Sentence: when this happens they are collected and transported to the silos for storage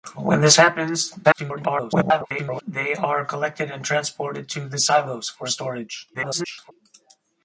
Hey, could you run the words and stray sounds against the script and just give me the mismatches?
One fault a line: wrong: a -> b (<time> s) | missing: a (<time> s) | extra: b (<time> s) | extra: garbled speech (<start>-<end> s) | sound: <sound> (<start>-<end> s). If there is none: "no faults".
extra: garbled speech (1.2-2.6 s)
extra: garbled speech (6.1-6.7 s)